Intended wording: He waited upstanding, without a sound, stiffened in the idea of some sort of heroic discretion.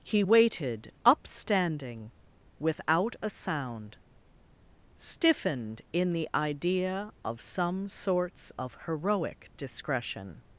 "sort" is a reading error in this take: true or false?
true